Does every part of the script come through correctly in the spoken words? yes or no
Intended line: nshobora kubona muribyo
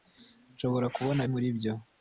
yes